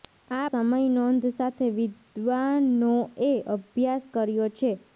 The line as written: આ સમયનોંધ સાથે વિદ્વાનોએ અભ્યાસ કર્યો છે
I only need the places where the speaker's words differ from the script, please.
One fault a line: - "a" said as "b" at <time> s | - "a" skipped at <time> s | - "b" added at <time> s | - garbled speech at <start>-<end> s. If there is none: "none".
none